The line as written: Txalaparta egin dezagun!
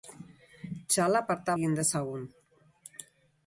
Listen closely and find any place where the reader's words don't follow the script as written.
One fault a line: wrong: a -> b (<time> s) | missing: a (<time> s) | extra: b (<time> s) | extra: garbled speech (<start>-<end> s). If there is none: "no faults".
no faults